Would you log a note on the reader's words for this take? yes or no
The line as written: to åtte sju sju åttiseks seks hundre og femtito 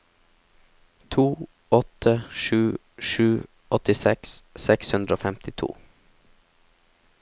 no